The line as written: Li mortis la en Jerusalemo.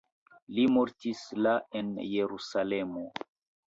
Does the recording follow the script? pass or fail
pass